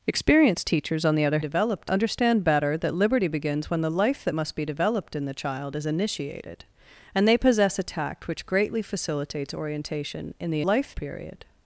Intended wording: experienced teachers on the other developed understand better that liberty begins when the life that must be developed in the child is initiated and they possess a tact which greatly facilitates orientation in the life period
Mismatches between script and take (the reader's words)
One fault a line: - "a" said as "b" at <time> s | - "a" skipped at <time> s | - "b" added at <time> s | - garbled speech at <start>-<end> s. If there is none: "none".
none